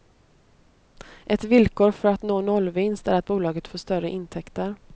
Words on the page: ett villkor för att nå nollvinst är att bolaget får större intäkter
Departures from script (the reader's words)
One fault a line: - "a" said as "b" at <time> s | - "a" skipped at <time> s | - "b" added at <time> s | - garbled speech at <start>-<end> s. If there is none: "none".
none